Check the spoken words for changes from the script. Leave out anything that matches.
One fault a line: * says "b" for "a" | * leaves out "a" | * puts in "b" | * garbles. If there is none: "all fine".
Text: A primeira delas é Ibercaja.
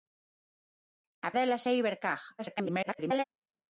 * leaves out "primeira"
* garbles